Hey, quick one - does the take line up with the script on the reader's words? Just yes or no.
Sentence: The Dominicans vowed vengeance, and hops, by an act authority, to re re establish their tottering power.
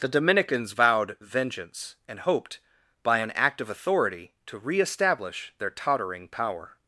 no